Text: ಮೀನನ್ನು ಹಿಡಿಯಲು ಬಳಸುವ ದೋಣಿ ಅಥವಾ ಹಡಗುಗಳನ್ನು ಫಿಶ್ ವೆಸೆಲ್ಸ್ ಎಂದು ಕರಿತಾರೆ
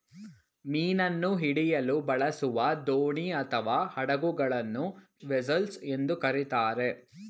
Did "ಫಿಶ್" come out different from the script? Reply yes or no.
yes